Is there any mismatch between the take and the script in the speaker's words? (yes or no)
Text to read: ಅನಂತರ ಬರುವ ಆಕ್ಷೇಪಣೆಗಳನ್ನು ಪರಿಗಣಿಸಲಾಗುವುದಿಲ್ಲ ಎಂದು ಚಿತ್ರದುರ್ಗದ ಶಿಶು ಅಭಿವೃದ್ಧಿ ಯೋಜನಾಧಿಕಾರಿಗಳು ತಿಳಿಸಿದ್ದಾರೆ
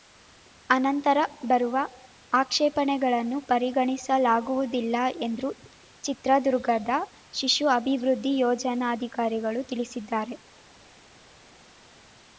no